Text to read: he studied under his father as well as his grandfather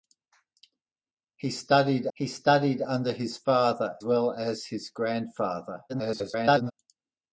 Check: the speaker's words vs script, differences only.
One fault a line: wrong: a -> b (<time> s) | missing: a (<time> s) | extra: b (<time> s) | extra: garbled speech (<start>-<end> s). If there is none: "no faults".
extra: he studied (2.1 s)
missing: as (4.0 s)
extra: garbled speech (5.9-6.7 s)